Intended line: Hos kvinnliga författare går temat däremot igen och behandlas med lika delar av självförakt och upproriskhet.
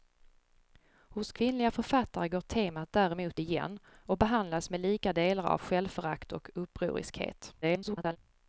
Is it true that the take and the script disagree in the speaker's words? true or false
true